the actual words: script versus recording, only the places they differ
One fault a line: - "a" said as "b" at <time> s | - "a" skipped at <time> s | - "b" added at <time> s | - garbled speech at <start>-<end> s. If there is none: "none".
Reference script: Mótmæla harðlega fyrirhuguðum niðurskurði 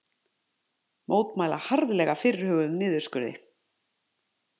none